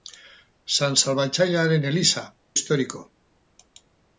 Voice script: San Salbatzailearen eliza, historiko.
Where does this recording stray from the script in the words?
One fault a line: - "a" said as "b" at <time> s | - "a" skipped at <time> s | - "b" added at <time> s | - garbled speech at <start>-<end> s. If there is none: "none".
none